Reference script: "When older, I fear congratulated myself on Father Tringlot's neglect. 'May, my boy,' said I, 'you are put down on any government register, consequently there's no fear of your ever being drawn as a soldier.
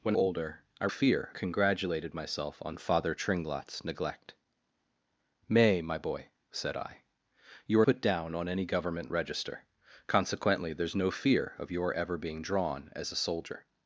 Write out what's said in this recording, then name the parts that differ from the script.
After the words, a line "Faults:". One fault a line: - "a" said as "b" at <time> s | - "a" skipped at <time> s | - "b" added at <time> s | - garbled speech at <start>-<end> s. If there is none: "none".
"When older, I fear congratulated myself on Father Tringlot's neglect. 'May, my boy,' said I, 'you are put down on any government register, consequently there's no fear of your ever being drawn as a soldier.
Faults:
none